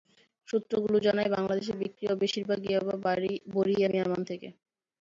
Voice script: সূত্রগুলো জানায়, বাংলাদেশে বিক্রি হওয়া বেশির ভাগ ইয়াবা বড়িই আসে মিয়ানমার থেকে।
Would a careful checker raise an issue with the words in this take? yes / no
yes